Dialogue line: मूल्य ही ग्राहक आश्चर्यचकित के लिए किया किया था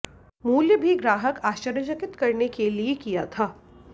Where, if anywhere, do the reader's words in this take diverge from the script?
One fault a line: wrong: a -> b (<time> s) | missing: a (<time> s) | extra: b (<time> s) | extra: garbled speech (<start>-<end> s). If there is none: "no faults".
wrong: ही -> भी (0.8 s)
extra: करने (2.1 s)
missing: किया (3.2 s)